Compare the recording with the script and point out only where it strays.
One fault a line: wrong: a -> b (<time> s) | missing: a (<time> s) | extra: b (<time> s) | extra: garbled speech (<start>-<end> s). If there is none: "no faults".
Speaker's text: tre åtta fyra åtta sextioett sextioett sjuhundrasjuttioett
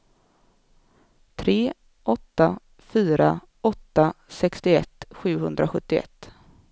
missing: sextioett (5.1 s)